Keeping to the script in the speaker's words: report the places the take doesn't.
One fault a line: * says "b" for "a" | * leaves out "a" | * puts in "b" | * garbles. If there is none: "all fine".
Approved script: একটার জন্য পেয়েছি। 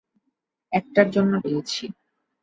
all fine